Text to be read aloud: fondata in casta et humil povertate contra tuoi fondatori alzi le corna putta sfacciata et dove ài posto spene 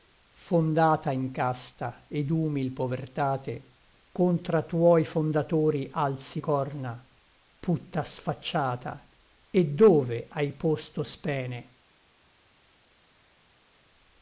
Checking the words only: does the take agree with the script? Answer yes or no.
no